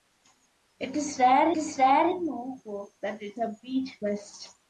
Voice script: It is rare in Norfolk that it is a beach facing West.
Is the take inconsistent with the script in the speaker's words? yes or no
yes